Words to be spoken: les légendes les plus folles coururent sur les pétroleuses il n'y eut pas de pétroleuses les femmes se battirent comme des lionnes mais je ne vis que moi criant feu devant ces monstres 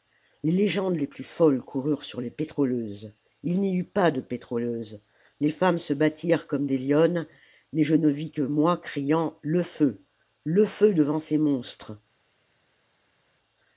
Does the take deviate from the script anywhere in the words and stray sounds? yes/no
yes